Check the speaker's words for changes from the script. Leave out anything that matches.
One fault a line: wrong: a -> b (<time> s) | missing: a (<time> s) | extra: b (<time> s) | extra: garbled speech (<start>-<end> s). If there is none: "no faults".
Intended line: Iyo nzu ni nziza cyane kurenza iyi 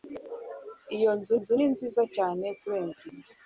extra: nzu (1.4 s)